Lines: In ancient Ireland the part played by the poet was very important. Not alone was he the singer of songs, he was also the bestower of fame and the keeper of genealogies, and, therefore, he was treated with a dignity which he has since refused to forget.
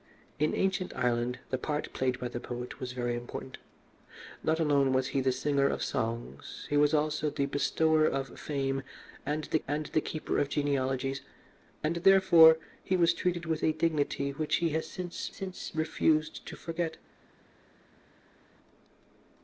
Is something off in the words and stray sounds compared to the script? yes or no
yes